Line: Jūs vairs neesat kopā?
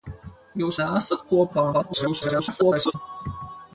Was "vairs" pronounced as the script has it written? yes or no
no